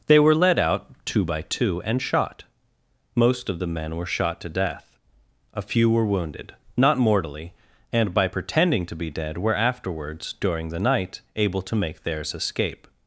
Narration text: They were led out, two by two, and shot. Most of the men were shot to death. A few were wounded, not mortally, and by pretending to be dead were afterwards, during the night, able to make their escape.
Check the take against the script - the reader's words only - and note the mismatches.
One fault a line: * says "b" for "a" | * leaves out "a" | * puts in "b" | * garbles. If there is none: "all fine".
* says "theirs" for "their"